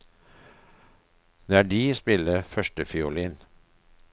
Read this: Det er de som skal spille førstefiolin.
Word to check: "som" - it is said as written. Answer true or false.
false